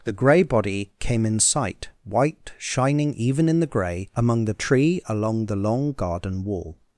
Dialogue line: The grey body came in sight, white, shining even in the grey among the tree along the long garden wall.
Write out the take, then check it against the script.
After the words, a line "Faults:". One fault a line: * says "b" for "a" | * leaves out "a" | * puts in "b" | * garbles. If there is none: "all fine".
The grey body came in sight, white, shining even in the grey among the tree along the long garden wall.
Faults:
all fine